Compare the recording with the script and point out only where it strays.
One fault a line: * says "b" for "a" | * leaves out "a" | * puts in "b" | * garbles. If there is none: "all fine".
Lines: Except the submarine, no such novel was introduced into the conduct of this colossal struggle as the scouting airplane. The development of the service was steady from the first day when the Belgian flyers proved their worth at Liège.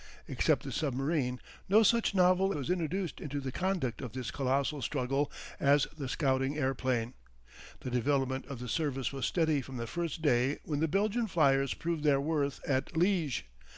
all fine